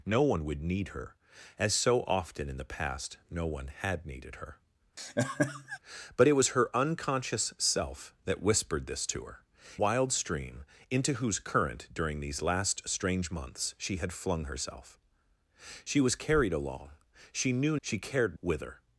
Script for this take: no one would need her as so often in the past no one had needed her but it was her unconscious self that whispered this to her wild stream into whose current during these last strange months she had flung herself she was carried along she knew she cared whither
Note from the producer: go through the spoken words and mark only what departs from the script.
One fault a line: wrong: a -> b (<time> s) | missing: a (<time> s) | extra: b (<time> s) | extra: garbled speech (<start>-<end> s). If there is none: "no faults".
no faults